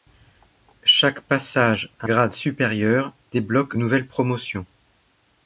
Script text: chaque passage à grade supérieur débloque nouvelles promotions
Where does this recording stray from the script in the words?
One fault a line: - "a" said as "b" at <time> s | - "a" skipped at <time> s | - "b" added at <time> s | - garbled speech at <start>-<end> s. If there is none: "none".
none